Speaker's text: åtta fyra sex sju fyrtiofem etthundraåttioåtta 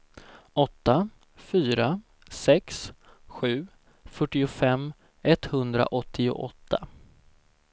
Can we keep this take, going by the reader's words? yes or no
yes